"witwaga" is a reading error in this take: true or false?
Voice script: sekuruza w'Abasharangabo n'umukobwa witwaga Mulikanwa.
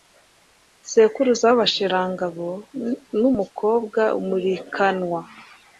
true